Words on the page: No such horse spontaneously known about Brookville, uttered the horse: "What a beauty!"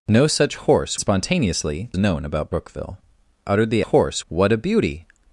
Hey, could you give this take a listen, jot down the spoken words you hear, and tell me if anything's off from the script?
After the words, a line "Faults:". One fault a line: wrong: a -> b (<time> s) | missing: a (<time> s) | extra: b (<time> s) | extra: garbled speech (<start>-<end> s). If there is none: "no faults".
No such horse spontaneously known about Brookville, uttered the horse: "What a beauty!"
Faults:
no faults